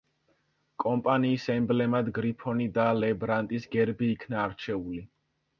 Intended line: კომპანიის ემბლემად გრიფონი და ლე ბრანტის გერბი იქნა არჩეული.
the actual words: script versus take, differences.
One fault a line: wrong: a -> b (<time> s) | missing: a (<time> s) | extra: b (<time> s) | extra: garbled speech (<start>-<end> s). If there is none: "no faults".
no faults